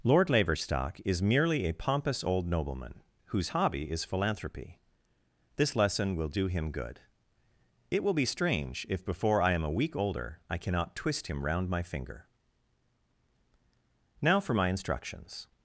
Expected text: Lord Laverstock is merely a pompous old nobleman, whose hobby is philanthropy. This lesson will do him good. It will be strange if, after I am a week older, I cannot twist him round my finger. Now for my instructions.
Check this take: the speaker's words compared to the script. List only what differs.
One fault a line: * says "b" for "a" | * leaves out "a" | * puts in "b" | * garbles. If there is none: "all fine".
* says "before" for "after"